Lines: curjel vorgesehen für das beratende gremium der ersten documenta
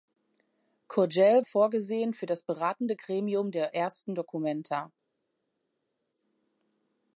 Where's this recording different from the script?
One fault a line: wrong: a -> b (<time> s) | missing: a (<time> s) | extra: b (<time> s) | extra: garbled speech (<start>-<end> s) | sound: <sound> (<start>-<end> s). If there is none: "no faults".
no faults